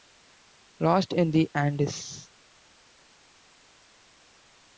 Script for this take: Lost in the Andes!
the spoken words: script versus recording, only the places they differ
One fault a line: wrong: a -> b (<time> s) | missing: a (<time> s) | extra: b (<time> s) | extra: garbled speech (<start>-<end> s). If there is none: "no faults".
no faults